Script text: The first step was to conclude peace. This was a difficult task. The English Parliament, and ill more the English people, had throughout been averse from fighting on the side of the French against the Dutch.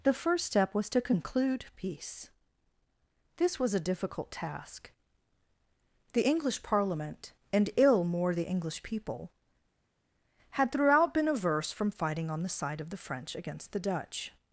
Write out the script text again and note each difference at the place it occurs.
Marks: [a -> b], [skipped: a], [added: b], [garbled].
The first step was to conclude peace. This was a difficult task. The English Parliament, and ill more the English people, had throughout been averse from fighting on the side of the French against the Dutch.